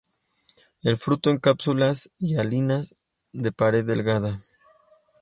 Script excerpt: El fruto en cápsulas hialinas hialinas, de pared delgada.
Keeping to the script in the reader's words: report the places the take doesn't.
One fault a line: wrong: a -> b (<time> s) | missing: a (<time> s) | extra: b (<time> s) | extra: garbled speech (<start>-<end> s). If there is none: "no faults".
missing: hialinas (3.0 s)